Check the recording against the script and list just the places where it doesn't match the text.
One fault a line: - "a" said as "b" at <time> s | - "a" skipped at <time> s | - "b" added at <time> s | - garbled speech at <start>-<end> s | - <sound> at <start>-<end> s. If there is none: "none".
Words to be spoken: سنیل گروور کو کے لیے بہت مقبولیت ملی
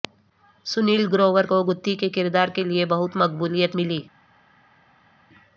- "گتھی کے کردار" added at 1.6 s